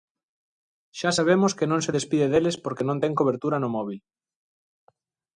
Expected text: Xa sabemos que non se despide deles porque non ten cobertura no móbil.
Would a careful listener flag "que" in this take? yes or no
no